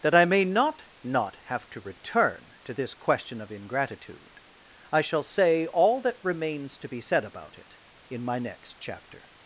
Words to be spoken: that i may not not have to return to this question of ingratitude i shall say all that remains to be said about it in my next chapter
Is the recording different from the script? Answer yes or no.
no